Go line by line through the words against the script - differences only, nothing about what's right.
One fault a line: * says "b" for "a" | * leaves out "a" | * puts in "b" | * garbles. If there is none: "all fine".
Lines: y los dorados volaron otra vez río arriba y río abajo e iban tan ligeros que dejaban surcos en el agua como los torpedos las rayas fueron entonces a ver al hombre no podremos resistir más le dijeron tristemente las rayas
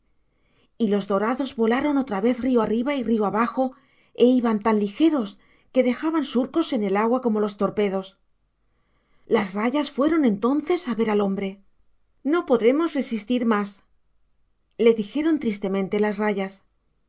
all fine